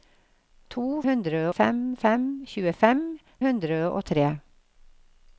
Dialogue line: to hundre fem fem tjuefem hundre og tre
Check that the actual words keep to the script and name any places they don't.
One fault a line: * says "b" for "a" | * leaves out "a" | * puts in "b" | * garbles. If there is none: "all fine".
all fine